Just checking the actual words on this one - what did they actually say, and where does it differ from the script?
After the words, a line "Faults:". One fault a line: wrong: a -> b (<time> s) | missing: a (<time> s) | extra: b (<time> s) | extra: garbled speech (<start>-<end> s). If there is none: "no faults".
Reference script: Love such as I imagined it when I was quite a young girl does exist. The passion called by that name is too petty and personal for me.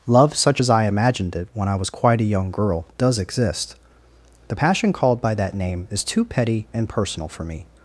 Love such as I imagined it when I was quite a young girl does exist. The passion called by that name is too petty and personal for me.
Faults:
no faults